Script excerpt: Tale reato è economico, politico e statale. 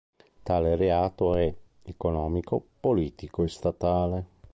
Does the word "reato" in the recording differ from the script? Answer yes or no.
no